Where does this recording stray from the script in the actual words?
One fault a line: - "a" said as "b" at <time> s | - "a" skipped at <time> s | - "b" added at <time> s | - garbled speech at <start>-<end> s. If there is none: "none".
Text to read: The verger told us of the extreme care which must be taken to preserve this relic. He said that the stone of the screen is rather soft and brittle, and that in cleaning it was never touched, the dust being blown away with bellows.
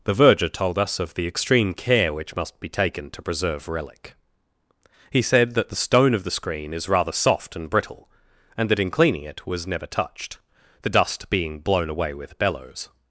- "this" skipped at 3.7 s